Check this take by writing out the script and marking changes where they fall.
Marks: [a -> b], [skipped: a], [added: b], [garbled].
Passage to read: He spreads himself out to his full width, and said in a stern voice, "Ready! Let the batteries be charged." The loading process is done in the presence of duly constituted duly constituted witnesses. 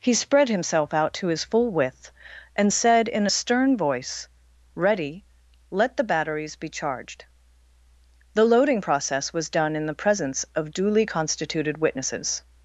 He [spreads -> spread] himself out to his full width, and said in a stern voice, "Ready! Let the batteries be charged." The loading process [is -> was] done in the presence of duly constituted [skipped: duly constituted] witnesses.